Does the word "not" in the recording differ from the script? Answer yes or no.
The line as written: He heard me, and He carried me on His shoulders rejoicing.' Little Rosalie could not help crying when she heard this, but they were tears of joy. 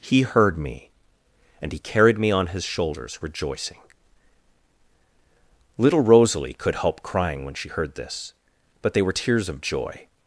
yes